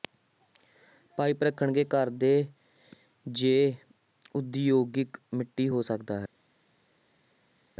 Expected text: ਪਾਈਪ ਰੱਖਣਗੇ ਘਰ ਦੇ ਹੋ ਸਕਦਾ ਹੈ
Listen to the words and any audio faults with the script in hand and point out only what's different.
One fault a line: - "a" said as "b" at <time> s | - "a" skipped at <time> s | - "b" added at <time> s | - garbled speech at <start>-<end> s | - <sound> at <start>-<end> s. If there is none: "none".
- "ਜ ਉਦਯੋਗਿਕ ਮਿੱਟੀ" added at 3.2 s